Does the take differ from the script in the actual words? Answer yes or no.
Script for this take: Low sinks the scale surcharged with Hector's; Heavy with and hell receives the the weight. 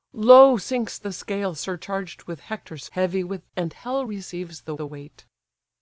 no